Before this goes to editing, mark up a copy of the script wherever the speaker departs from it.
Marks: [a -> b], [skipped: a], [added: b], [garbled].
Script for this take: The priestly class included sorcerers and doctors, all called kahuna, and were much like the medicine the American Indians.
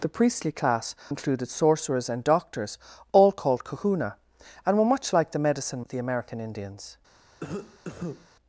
The priestly class included sorcerers and doctors, all called kahuna, and were much like the medicine the American Indians.